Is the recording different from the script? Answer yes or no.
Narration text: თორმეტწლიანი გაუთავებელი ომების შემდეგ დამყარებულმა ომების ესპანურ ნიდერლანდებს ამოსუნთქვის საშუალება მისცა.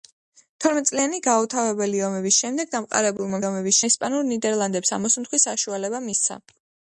no